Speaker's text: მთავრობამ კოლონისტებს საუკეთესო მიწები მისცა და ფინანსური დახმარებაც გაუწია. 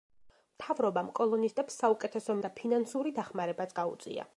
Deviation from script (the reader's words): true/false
true